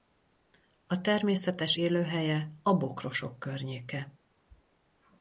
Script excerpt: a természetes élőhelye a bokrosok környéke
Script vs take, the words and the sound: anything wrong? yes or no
no